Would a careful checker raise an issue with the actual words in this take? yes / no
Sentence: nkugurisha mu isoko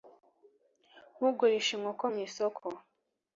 yes